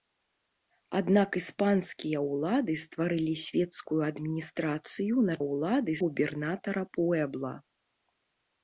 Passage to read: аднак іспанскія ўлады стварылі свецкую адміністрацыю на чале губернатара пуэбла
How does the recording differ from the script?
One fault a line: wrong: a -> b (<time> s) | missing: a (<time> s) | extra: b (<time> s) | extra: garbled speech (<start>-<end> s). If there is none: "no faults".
wrong: чале -> ўлады (5.5 s)